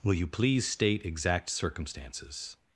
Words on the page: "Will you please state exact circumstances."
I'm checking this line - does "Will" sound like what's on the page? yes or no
yes